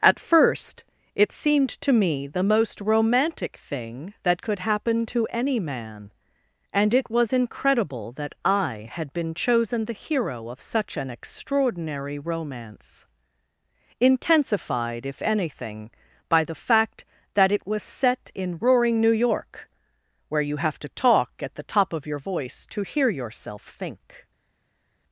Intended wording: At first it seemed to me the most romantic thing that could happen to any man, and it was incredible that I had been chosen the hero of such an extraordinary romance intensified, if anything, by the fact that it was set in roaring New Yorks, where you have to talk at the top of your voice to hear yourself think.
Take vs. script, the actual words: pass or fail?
fail